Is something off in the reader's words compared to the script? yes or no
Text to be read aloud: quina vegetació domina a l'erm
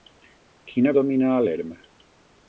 yes